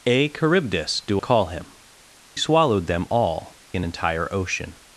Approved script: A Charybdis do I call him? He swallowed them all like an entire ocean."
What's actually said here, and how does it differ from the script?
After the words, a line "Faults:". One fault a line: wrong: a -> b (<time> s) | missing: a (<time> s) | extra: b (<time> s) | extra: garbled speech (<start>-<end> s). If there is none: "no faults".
A Charybdis do call him? Swallowed them all an entire ocean."
Faults:
missing: I (1.2 s)
missing: He (1.7 s)
missing: like (3.6 s)